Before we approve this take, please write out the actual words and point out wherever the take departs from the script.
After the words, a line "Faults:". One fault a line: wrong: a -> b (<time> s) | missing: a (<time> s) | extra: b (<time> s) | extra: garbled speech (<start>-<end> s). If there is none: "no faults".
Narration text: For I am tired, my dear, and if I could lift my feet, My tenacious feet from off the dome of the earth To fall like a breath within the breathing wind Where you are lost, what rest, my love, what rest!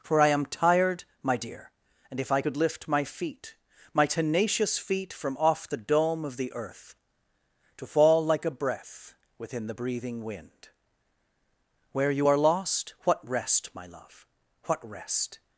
For I am tired, my dear, and if I could lift my feet, My tenacious feet from off the dome of the earth To fall like a breath within the breathing wind Where you are lost, what rest, my love, what rest!
Faults:
no faults